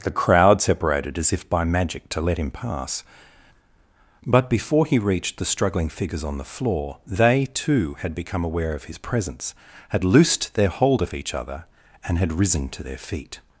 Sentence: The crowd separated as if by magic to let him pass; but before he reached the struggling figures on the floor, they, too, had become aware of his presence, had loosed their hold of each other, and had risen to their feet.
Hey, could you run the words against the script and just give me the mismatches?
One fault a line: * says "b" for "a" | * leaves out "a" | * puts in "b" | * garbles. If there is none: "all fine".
all fine